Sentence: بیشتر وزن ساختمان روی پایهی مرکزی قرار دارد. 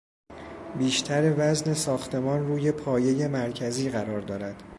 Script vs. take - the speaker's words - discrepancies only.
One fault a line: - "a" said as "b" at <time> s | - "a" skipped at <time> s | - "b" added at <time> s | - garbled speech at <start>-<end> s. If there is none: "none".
none